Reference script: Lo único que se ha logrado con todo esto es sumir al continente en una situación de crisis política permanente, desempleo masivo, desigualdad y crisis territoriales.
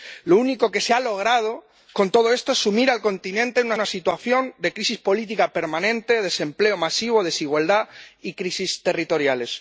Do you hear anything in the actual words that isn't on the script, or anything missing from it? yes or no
yes